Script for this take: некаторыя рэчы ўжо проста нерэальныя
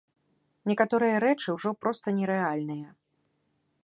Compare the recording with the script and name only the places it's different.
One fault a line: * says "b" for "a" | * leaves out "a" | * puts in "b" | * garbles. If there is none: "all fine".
all fine